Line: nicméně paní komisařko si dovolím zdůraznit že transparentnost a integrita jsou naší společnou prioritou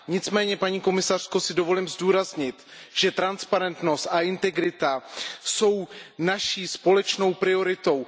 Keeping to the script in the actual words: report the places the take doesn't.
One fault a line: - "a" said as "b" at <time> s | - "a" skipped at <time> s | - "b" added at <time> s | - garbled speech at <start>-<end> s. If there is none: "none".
none